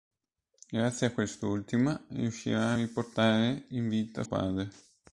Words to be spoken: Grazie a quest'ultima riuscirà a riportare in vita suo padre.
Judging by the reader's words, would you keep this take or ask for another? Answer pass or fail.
fail